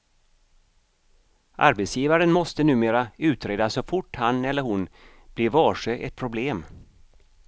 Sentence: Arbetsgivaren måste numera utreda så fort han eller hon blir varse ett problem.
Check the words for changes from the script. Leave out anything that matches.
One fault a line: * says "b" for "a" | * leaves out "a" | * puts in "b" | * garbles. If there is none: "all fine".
all fine